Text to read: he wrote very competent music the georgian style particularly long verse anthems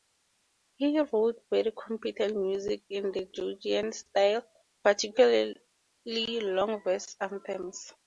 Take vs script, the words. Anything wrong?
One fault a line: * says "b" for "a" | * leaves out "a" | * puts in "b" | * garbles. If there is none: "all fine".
* puts in "in"